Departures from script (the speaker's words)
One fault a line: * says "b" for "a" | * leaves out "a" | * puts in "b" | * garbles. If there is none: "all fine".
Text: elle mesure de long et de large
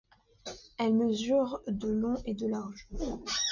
all fine